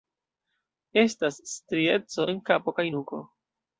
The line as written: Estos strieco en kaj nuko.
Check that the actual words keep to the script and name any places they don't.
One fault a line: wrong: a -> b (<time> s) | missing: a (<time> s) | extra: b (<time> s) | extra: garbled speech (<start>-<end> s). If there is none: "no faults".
wrong: Estos -> Estas (1.0 s)
extra: kapo (2.5 s)